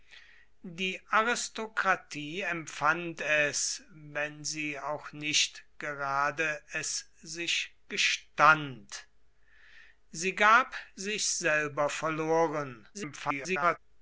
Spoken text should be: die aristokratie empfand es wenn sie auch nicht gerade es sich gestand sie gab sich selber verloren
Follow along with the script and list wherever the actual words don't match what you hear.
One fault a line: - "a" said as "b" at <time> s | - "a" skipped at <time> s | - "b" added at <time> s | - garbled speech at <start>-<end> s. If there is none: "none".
- garbled speech at 12.9-13.8 s